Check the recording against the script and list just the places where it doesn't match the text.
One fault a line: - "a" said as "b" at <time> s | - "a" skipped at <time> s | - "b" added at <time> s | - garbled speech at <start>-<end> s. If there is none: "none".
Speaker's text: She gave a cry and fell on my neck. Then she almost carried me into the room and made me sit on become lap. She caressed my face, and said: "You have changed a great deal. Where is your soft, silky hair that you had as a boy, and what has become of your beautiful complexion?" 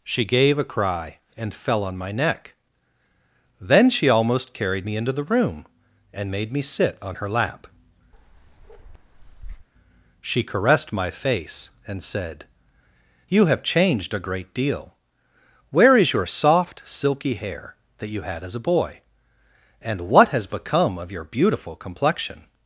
- "become" said as "her" at 7.2 s